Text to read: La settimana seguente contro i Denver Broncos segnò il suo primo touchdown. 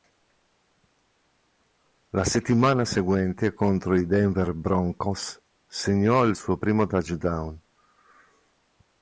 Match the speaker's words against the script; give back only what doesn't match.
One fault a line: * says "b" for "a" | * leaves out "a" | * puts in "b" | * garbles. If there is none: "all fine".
all fine